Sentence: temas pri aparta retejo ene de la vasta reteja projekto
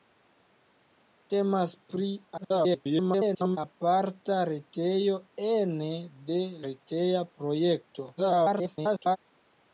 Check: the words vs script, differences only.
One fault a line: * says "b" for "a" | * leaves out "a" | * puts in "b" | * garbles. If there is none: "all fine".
* garbles
* leaves out "la vasta"
* garbles